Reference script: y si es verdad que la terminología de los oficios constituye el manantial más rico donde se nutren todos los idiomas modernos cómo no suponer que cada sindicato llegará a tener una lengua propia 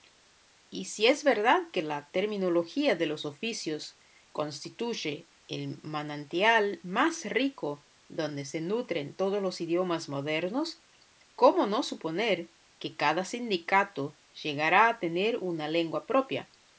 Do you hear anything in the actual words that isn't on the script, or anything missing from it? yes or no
no